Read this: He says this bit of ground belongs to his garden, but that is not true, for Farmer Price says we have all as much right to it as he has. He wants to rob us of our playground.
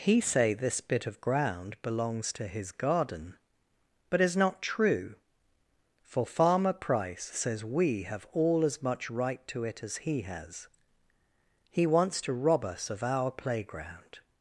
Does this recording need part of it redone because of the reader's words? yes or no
yes